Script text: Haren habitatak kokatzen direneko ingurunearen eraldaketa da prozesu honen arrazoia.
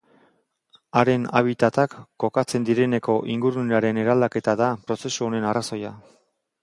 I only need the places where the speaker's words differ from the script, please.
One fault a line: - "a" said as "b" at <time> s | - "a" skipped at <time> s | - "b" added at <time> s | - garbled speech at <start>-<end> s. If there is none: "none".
none